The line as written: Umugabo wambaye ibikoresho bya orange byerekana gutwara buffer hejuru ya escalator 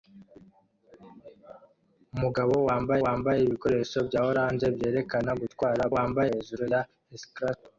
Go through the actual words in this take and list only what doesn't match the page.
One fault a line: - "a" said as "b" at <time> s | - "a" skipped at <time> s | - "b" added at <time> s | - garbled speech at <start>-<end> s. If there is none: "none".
- "wambaye" added at 3.0 s
- "buffer" said as "wambaye" at 5.9 s